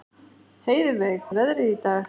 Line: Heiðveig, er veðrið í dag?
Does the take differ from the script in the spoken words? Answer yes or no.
no